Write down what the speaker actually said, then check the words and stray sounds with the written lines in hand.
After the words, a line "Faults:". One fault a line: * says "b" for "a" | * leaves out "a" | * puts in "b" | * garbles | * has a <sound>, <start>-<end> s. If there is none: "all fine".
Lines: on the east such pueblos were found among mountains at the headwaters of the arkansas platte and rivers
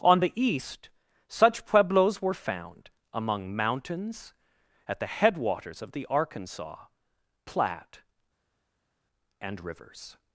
on the east such pueblos were found among mountains at the headwaters of the arkansas platte and rivers
Faults:
all fine